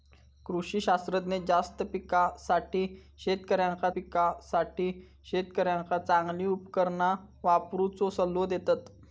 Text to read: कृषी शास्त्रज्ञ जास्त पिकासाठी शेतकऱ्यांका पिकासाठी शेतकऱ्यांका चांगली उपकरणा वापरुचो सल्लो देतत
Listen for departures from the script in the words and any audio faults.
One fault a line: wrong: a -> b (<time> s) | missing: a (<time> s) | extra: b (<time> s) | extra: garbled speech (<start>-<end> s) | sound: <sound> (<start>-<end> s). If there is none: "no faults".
no faults